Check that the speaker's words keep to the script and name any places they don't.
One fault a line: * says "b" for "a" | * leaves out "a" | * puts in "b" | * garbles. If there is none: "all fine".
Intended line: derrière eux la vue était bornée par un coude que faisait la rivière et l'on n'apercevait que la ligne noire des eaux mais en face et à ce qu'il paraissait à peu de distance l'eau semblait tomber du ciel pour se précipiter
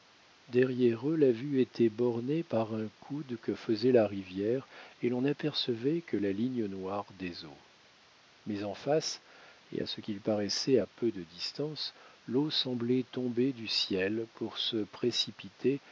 all fine